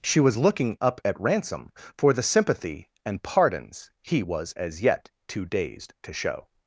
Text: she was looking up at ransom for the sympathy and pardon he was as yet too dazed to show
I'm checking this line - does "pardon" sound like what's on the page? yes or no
no